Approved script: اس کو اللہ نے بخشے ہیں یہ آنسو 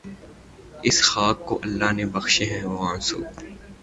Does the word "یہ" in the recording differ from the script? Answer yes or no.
yes